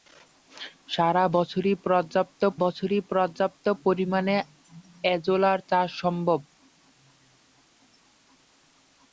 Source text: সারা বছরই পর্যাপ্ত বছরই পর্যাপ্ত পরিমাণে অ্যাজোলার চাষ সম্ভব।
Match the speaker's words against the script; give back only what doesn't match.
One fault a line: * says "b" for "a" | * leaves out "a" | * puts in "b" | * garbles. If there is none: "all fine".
all fine